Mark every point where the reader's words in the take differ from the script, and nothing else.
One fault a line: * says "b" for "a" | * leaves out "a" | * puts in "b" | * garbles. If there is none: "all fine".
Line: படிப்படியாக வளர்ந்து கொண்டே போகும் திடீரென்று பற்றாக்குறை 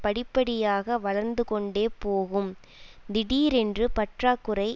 all fine